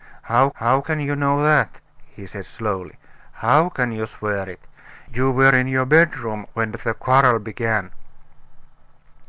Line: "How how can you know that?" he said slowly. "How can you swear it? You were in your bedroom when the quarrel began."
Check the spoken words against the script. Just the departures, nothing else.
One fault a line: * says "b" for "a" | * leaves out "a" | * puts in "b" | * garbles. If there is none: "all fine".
all fine